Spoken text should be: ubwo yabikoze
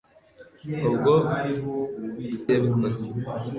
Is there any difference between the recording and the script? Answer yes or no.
no